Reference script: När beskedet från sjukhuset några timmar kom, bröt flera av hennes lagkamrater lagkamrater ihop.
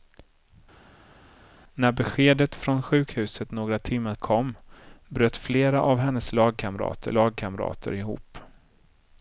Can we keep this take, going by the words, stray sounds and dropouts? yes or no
yes